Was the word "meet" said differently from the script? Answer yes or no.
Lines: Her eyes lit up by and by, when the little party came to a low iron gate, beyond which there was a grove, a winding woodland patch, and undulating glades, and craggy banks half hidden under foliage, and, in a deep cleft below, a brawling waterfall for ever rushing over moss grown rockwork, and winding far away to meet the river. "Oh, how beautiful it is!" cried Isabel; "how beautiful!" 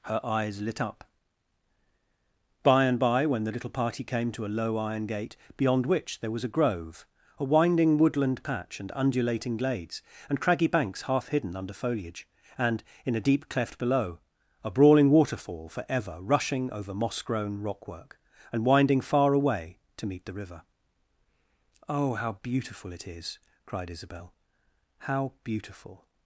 no